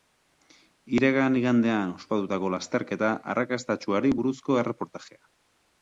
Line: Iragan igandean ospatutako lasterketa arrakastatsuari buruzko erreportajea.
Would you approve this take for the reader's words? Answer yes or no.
yes